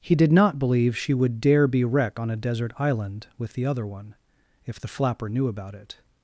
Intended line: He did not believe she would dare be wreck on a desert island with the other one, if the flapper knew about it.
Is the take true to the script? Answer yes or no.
yes